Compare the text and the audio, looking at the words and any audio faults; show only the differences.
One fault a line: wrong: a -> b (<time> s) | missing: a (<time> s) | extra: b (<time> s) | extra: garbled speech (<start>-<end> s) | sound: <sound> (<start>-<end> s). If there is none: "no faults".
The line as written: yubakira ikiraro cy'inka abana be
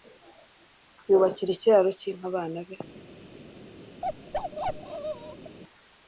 sound: bark (4.0-5.6 s)